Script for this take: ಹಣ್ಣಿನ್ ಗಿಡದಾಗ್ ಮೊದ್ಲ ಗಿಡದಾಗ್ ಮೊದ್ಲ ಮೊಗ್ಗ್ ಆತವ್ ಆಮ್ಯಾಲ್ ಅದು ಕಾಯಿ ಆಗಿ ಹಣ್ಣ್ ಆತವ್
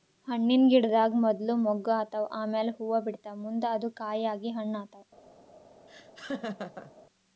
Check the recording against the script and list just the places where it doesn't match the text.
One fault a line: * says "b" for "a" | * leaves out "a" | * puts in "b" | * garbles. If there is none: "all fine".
* leaves out "ಗಿಡದಾಗ್ ಮೊದ್ಲ"
* puts in "ಹೂವಾ ಬಿಡ್ತಾವ್ ಮುಂದ್"